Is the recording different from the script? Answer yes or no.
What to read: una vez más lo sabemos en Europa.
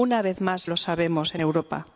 no